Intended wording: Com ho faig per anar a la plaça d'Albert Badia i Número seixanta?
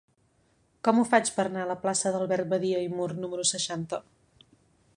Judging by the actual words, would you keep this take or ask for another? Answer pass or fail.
fail